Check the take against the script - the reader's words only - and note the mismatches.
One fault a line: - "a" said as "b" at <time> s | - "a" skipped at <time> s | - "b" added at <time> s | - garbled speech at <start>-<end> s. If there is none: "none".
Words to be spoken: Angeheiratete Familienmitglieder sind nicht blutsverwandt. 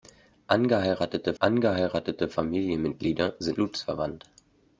- "angeheiratete" added at 1.4 s
- "nicht" skipped at 3.6 s